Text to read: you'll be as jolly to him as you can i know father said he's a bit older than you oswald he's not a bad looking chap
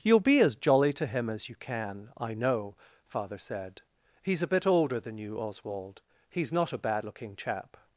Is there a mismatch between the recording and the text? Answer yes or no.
no